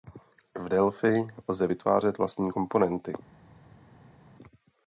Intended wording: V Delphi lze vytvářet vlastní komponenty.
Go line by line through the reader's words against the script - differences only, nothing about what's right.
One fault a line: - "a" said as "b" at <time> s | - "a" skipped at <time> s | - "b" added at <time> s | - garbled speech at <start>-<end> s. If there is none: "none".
none